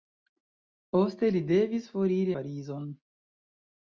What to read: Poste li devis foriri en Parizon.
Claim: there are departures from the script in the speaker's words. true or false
true